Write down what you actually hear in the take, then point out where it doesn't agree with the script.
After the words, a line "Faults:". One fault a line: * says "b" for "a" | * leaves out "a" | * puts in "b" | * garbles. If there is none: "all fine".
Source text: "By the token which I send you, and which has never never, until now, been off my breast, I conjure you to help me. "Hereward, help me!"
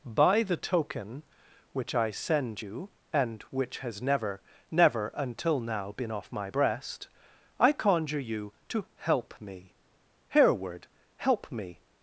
"By the token which I send you, and which has never never, until now, been off my breast, I conjure you to help me. "Hereward, help me!"
Faults:
all fine